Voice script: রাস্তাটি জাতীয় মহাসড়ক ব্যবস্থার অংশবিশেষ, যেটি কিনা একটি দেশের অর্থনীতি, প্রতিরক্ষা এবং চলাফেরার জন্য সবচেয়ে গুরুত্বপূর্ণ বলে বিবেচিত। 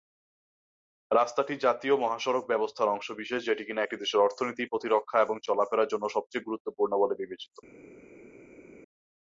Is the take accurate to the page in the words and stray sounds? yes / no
yes